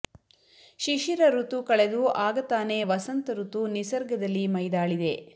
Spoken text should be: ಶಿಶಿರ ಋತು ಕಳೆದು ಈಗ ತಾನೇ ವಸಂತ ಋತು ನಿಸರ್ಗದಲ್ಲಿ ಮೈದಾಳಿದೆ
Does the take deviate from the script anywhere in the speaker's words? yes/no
yes